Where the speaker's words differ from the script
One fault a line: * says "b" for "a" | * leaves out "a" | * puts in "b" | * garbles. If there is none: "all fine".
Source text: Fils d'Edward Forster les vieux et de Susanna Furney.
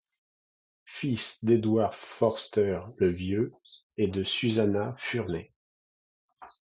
* says "le" for "les"